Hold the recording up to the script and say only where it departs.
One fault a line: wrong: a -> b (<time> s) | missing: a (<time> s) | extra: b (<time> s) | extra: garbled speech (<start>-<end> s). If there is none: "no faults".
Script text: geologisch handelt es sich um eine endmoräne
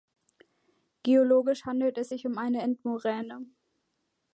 no faults